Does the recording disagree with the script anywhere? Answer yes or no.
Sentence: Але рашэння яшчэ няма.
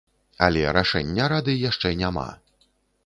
yes